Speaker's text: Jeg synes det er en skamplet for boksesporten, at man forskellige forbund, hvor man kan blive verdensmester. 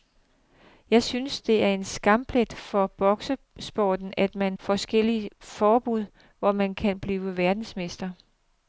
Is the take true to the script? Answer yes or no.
yes